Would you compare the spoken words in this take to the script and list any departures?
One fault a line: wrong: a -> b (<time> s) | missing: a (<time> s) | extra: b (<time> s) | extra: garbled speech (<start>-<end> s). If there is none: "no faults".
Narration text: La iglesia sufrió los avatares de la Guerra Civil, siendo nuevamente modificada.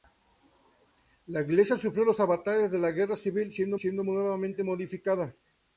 extra: siendo (3.8 s)